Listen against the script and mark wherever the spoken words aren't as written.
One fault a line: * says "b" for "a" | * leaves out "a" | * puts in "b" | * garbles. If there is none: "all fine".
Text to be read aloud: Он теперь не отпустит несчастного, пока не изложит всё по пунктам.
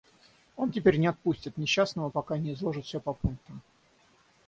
all fine